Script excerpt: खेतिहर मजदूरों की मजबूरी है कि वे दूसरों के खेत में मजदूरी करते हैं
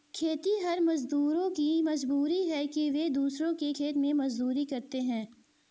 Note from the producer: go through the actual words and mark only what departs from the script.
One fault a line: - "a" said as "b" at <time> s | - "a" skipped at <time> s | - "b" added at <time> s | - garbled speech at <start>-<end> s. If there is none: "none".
none